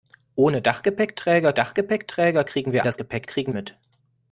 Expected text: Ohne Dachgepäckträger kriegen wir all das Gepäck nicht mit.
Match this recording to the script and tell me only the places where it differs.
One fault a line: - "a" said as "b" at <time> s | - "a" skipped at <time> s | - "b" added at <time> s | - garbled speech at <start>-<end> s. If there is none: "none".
- "Dachgepäckträger" added at 1.5 s
- "all" skipped at 2.8 s
- "nicht" said as "kriegen" at 3.2 s